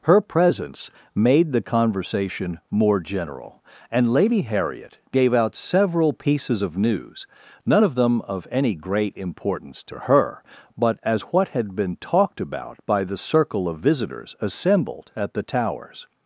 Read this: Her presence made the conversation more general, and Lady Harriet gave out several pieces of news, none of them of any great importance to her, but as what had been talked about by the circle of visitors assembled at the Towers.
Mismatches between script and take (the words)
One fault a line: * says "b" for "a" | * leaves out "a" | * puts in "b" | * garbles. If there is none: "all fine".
all fine